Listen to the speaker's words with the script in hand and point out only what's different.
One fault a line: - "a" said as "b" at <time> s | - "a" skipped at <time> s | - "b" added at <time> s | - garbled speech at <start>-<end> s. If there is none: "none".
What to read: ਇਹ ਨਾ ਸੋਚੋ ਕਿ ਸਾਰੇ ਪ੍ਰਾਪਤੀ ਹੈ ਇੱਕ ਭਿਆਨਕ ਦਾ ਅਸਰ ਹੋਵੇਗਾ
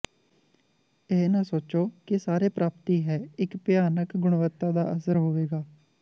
- "ਗੁਣਵੱਤਾ" added at 4.2 s